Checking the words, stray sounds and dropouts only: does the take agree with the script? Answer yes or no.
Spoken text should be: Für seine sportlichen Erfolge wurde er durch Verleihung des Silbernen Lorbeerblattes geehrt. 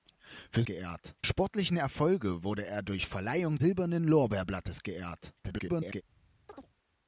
no